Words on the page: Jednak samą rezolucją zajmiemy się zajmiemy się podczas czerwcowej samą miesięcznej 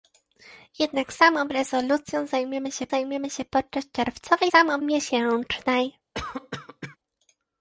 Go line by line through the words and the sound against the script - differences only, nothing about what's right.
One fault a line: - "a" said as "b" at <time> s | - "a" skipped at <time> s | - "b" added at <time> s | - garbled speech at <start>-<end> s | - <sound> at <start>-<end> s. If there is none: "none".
- cough at 6.1-7.0 s